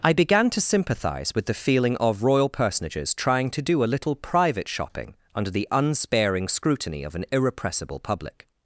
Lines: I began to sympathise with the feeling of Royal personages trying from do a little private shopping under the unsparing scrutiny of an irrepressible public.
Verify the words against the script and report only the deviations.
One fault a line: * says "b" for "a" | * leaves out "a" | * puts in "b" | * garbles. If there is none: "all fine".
* says "to" for "from"